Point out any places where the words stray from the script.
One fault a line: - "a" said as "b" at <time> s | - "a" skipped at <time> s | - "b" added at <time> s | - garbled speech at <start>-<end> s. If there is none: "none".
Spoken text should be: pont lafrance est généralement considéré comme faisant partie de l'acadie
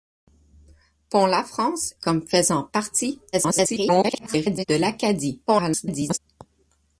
- "est généralement considéré" skipped at 1.9 s
- garbled speech at 3.3-4.7 s
- garbled speech at 5.5-6.2 s